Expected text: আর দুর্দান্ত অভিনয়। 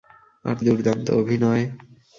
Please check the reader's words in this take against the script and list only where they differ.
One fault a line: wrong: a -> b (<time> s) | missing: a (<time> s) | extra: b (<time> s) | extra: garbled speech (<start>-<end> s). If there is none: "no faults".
no faults